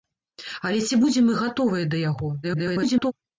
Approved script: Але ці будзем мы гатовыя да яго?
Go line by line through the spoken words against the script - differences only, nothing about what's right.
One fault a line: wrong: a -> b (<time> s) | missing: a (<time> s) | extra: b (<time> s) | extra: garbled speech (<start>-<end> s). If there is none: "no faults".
extra: garbled speech (2.4-3.1 s)